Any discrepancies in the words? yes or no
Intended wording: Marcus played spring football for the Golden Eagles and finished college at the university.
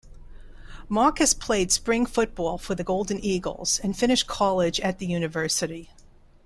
no